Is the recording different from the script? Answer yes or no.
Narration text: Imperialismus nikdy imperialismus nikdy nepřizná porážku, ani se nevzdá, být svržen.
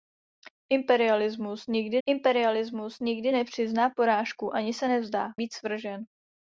no